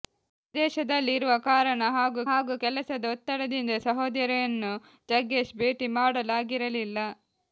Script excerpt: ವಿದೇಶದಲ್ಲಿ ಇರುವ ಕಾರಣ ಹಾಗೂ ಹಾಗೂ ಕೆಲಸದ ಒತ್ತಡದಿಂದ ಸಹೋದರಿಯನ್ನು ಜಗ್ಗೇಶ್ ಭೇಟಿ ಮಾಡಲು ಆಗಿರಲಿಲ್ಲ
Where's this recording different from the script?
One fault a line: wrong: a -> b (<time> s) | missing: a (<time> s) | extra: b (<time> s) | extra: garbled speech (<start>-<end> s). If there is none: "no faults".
no faults